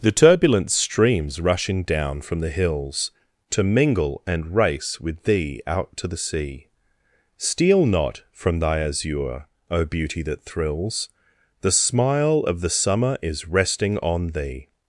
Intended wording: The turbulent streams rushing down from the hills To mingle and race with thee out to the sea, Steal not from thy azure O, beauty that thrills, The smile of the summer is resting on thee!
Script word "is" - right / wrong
right